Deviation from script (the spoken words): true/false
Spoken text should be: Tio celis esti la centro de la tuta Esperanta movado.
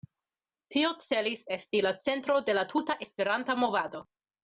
false